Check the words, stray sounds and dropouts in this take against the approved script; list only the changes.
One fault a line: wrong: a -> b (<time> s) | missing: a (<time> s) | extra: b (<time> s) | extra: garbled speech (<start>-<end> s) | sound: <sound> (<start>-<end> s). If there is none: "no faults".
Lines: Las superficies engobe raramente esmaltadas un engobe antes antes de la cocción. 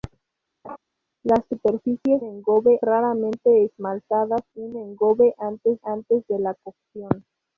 sound: laugh (0.6-0.8 s)